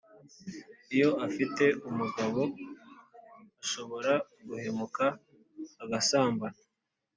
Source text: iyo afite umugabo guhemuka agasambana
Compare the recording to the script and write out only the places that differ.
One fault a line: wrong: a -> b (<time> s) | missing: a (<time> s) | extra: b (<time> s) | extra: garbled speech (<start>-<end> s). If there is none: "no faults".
extra: ashobora (3.6 s)